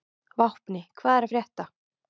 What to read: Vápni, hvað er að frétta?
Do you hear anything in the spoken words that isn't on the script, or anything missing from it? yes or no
no